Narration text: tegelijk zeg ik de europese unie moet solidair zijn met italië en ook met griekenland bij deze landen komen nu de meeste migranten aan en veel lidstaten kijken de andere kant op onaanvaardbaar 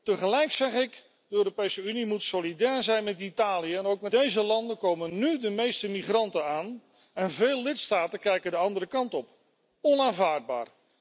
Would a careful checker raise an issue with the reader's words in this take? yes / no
yes